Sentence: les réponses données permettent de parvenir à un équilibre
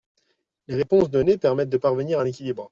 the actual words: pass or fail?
pass